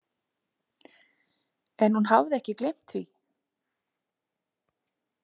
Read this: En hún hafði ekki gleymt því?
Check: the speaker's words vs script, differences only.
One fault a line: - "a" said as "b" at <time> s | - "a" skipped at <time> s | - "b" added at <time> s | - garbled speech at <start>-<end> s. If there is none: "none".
none